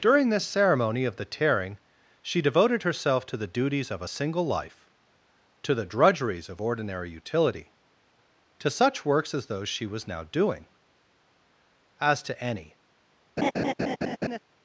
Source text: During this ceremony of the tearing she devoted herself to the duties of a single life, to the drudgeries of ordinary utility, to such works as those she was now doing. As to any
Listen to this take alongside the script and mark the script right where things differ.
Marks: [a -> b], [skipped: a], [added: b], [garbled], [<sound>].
During this ceremony of the tearing she devoted herself to the duties of a single life, to the drudgeries of ordinary utility, to such works as those she was now doing. As to any [laugh]